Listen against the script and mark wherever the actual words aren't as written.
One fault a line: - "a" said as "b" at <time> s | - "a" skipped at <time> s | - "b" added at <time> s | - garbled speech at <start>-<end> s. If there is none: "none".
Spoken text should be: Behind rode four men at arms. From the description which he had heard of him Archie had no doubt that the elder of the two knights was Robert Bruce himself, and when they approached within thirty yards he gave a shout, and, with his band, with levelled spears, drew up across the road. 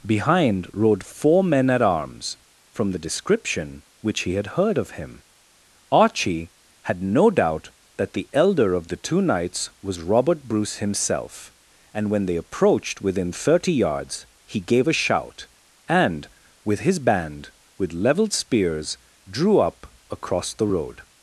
none